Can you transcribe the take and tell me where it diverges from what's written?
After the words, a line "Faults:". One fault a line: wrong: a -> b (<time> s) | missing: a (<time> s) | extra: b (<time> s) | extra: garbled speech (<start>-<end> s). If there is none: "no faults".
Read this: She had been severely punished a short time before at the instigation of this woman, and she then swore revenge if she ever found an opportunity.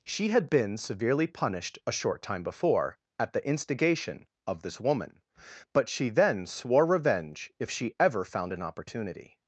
She had been severely punished a short time before at the instigation of this woman, but she then swore revenge if she ever found an opportunity.
Faults:
wrong: and -> but (5.7 s)